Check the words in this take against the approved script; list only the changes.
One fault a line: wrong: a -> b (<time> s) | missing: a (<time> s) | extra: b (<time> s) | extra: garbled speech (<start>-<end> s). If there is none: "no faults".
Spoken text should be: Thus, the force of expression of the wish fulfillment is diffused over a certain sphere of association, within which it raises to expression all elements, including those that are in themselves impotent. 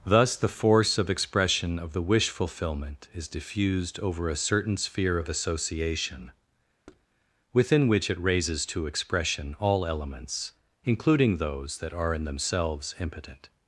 no faults